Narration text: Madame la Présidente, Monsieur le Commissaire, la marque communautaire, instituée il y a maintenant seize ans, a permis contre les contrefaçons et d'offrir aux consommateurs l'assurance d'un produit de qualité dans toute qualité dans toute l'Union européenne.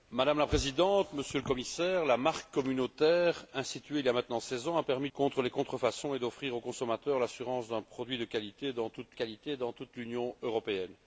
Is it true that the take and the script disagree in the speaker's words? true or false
false